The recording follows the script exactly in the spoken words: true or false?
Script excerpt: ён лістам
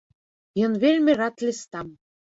false